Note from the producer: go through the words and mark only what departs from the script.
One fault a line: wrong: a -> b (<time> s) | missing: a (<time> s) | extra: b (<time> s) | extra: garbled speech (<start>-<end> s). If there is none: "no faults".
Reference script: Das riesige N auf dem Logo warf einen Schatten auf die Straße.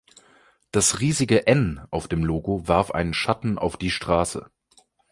no faults